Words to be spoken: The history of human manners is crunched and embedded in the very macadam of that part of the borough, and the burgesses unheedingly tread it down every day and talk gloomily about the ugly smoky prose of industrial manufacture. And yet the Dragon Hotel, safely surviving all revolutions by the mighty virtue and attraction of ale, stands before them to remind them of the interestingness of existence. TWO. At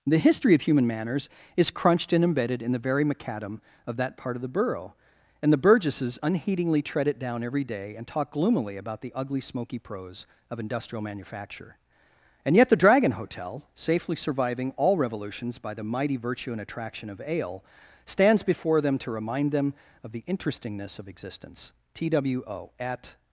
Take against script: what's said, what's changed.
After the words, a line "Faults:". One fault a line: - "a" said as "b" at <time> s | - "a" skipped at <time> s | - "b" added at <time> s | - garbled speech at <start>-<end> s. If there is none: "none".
The history of human manners is crunched and embedded in the very macadam of that part of the borough, and the burgesses unheedingly tread it down every day and talk gloomily about the ugly smoky prose of industrial manufacture. And yet the Dragon Hotel, safely surviving all revolutions by the mighty virtue and attraction of ale, stands before them to remind them of the interestingness of existence. TWO. At
Faults:
none